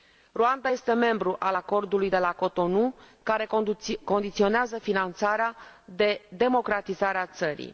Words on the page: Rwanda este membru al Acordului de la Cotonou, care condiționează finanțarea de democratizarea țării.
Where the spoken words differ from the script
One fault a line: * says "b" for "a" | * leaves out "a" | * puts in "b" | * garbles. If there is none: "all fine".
all fine